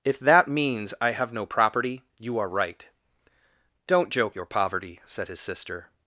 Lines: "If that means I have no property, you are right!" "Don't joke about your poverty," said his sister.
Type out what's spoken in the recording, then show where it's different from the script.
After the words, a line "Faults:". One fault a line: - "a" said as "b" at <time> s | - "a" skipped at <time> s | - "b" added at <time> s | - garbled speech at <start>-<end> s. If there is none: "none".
"If that means I have no property, you are right!" "Don't joke your poverty," said his sister.
Faults:
- "about" skipped at 4.3 s